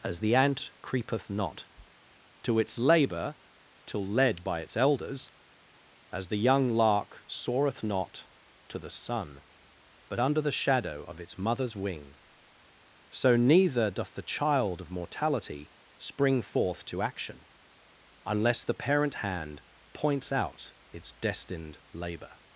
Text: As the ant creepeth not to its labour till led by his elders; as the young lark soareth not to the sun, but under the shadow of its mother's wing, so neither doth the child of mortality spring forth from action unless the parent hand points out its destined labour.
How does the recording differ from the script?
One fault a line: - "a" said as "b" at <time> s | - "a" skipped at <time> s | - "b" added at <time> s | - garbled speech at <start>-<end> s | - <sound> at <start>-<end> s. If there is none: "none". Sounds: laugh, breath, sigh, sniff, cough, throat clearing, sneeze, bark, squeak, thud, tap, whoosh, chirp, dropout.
- "his" said as "its" at 4.6 s
- "from" said as "to" at 16.8 s